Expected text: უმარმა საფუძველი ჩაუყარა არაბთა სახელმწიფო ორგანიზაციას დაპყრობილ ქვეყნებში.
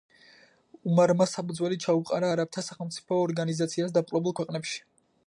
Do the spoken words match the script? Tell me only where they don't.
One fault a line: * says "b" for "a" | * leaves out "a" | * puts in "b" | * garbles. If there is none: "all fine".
all fine